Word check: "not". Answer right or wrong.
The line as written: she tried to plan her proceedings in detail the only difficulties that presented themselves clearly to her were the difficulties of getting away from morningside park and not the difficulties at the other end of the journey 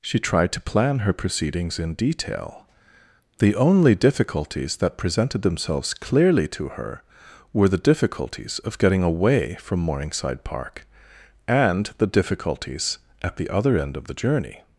wrong